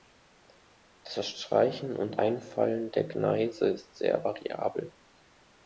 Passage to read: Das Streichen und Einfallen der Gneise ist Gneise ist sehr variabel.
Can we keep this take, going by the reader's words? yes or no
no